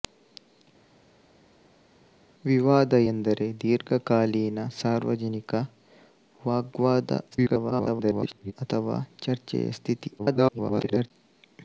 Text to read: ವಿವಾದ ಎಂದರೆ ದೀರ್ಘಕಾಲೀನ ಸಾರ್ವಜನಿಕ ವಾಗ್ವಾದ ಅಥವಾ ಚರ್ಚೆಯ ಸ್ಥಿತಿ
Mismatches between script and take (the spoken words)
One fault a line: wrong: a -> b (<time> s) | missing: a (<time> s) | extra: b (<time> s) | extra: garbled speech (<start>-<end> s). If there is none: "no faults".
extra: garbled speech (7.3-8.5 s)
extra: garbled speech (10.2-11.1 s)